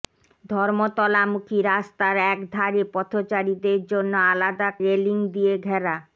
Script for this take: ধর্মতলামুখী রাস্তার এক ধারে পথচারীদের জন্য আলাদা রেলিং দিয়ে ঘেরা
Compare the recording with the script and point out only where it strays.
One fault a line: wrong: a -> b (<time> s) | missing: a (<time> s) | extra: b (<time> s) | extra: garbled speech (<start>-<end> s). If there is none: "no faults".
no faults